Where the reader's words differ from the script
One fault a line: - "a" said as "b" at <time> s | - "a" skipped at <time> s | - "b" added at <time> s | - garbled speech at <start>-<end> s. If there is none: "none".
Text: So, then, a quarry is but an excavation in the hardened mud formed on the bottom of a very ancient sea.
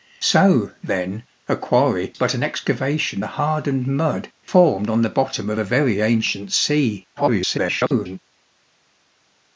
- "is" skipped at 2.1 s
- "in" skipped at 3.2 s
- garbled speech at 7.2-8.2 s